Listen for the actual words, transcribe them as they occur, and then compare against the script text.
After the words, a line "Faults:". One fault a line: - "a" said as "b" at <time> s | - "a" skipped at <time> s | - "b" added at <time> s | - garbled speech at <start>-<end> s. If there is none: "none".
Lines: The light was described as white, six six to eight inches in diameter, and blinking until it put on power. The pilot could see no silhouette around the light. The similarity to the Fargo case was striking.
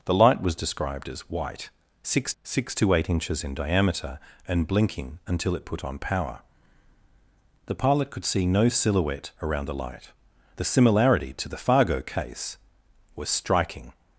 The light was described as white, six six to eight inches in diameter, and blinking until it put on power. The pilot could see no silhouette around the light. The similarity to the Fargo case was striking.
Faults:
none